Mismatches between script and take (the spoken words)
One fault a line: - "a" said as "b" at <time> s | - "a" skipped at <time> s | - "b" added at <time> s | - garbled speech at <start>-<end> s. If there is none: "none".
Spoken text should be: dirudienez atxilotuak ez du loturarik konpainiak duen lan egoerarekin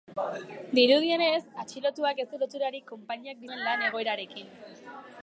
none